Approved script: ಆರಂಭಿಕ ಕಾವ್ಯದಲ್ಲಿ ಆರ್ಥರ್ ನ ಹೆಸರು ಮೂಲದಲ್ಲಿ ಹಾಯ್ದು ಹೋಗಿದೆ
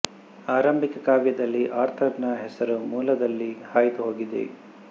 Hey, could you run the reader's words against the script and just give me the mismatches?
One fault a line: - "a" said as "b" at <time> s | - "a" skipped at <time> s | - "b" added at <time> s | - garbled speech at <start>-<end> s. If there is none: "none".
none